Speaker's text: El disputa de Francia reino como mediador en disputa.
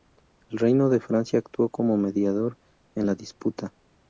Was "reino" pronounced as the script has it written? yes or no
no